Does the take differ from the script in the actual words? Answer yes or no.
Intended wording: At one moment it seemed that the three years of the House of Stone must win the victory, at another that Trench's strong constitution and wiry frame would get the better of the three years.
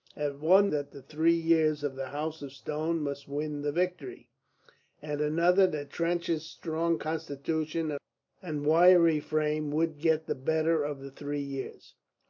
yes